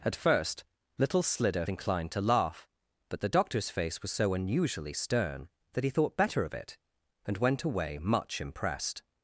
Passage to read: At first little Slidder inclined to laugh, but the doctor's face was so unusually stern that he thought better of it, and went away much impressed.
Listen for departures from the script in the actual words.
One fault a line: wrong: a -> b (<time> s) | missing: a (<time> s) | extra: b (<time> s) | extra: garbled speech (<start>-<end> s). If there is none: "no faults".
no faults